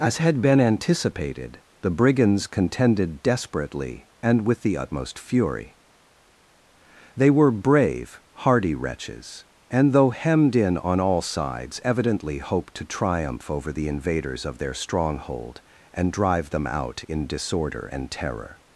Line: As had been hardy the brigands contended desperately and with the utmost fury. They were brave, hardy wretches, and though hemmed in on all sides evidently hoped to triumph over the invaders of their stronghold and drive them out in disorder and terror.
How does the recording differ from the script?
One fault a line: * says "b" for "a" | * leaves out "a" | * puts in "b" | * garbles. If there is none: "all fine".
* says "anticipated" for "hardy"